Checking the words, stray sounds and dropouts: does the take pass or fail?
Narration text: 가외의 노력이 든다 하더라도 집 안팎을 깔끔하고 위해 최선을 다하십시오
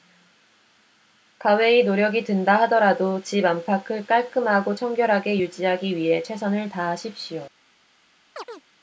fail